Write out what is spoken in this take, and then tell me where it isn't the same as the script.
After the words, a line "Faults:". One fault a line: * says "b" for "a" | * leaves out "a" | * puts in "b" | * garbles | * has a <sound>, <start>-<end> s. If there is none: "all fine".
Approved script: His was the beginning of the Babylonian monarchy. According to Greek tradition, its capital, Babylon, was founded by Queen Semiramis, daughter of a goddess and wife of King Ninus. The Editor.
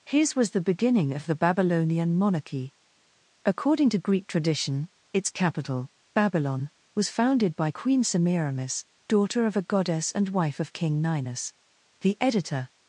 His was the beginning of the Babylonian monarchy. According to Greek tradition, its capital, Babylon, was founded by Queen Semiramis, daughter of a goddess and wife of King Ninus. The Editor.
Faults:
all fine